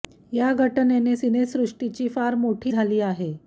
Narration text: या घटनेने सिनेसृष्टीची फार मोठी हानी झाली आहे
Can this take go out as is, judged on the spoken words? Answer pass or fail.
fail